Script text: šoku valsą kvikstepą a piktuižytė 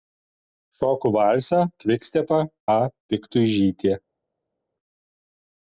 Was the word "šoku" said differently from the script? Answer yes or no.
no